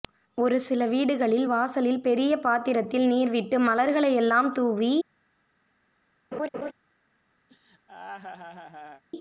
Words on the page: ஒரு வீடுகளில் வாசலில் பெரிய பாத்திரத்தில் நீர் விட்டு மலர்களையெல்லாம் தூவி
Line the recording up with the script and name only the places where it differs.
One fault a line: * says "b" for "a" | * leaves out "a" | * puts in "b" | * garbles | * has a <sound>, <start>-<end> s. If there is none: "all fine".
* puts in "சில"
* has a laugh, 6.3-6.7 s
* has a laugh, 7.5-9.0 s